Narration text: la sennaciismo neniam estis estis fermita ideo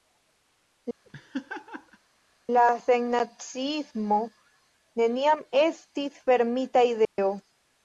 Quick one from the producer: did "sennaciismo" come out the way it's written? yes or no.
yes